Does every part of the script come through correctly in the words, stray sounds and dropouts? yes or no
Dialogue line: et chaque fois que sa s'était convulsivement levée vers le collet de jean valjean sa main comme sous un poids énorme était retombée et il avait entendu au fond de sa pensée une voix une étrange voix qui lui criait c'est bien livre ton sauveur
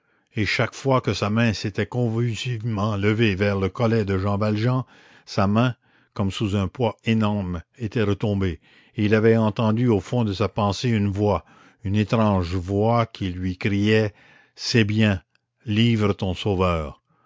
no